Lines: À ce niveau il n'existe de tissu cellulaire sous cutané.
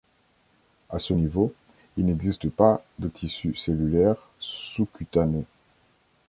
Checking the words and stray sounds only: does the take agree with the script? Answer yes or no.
no